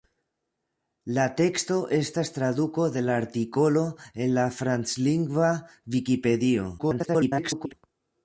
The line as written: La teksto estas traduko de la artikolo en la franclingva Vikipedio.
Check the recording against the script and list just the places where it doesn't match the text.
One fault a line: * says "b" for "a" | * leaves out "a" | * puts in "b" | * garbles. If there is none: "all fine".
* garbles